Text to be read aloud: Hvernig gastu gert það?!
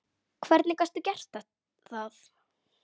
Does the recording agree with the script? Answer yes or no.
yes